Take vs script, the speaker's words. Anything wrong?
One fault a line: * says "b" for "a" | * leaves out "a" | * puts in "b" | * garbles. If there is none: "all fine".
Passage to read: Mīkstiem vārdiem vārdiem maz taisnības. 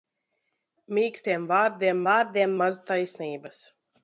all fine